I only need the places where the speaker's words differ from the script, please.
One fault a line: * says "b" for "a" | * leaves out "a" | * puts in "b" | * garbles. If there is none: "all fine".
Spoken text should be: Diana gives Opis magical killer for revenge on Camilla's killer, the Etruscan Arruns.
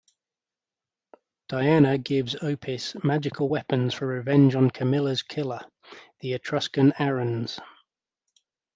* says "weapons" for "killer"